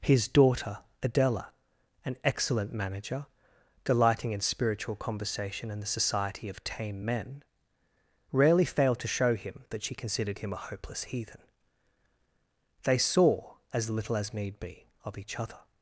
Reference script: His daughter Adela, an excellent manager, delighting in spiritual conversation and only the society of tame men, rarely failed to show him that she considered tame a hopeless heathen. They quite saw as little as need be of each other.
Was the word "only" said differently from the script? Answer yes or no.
yes